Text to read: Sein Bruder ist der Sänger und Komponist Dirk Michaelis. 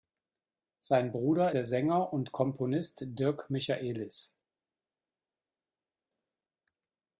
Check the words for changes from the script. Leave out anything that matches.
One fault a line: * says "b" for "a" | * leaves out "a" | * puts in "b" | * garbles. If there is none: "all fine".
* leaves out "ist"